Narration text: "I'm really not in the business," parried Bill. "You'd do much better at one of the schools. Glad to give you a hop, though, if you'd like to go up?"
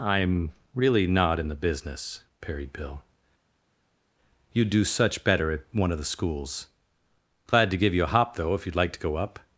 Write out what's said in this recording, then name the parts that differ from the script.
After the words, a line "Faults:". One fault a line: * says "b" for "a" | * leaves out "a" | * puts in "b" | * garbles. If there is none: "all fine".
"I'm really not in the business," parried Bill. "You'd do such better at one of the schools. Glad to give you a hop, though, if you'd like to go up?"
Faults:
* says "such" for "much"